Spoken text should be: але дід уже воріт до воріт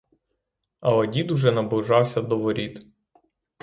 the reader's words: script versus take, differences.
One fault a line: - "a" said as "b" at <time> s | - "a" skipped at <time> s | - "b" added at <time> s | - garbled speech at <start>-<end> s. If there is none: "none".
- "воріт" said as "наближався" at 1.5 s